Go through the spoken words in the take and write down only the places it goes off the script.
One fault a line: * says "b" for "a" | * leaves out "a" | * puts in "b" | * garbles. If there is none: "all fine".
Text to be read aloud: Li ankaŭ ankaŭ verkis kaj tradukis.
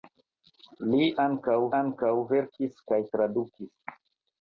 all fine